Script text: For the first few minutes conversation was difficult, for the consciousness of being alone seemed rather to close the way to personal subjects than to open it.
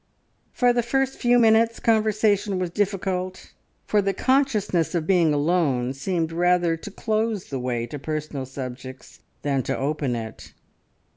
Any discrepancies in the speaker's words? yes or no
no